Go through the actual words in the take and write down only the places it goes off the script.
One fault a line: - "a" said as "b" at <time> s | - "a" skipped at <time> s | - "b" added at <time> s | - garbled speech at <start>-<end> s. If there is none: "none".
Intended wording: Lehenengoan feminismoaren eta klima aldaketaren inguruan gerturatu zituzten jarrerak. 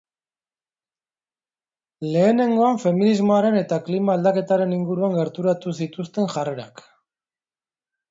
none